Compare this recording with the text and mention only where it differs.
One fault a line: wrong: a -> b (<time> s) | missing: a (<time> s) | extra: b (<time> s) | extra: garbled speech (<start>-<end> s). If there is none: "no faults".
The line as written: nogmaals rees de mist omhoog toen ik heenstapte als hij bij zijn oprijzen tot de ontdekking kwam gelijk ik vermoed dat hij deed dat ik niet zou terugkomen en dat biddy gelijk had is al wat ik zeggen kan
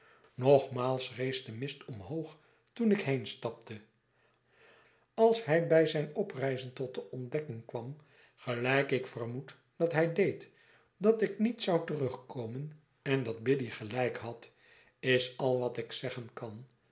no faults